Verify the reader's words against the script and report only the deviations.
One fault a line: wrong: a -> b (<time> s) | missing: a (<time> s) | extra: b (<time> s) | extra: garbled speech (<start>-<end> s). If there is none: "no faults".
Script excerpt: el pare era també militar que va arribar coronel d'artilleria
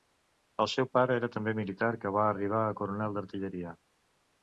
extra: seu (0.7 s)
extra: a (2.6 s)